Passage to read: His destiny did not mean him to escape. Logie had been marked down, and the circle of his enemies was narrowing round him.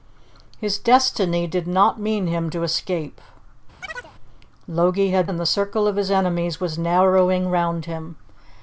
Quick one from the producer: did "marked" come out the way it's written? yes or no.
no